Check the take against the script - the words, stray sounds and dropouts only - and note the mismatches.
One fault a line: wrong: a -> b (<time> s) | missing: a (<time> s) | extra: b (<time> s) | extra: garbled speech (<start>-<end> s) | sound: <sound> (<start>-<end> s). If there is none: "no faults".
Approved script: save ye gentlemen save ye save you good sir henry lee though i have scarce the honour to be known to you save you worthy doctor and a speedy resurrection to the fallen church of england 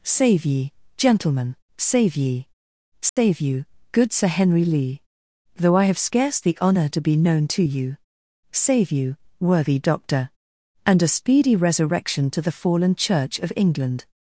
sound: dropout (3.1-3.2 s)